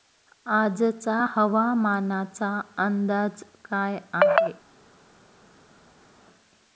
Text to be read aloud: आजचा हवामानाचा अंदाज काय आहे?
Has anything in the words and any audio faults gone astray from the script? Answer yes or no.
no